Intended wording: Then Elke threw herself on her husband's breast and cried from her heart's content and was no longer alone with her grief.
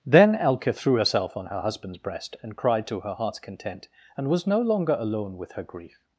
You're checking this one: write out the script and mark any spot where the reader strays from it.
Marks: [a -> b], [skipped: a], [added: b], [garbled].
Then Elke threw herself on her husband's breast and cried [from -> to] her heart's content and was no longer alone with her grief.